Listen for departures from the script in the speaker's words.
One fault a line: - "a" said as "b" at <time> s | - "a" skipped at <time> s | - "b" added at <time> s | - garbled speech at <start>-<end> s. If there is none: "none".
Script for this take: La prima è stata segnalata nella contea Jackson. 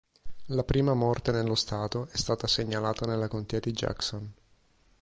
- "morte nello stato" added at 0.9 s
- "di" added at 3.6 s